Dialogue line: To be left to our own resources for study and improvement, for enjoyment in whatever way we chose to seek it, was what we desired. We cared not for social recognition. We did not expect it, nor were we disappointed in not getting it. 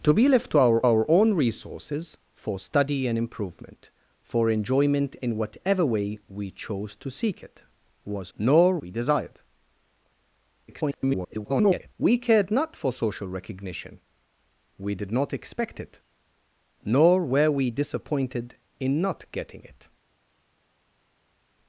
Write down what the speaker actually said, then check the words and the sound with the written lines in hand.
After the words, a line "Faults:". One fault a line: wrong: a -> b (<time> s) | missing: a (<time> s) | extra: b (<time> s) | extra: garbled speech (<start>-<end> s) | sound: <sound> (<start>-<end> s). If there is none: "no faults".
To be left to our our own resources for study and improvement, for enjoyment in whatever way we chose to seek it, was nor we desired. [garbled] We cared not for social recognition. We did not expect it, nor were we disappointed in not getting it.
Faults:
extra: our (0.8 s)
wrong: what -> nor (8.4 s)
extra: garbled speech (10.7-11.9 s)